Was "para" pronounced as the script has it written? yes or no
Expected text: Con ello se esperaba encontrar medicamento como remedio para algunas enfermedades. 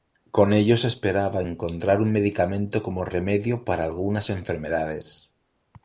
yes